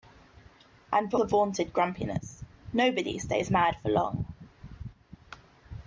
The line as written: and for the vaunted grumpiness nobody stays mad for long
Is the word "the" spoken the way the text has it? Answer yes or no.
yes